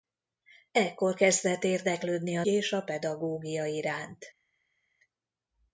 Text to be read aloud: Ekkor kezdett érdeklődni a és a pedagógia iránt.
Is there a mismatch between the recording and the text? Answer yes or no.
no